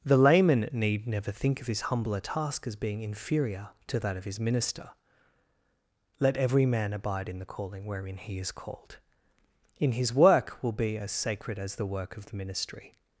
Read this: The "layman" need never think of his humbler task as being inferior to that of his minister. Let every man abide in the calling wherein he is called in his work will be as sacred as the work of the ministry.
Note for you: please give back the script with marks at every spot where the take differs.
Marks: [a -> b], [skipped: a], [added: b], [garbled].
The "layman" need never think of his humbler task as being inferior to that of his minister. Let every man abide in the calling wherein he is called in his work will be as sacred as the work of the ministry.